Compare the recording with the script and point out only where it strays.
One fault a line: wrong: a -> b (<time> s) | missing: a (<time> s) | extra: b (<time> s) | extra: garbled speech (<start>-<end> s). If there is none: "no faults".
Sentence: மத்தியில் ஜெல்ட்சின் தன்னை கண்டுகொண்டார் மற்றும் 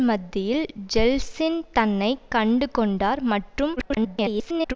extra: garbled speech (3.8-4.7 s)